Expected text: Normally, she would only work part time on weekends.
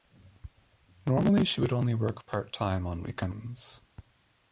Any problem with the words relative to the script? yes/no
no